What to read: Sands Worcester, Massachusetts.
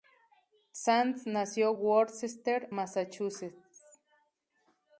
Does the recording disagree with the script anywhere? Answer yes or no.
yes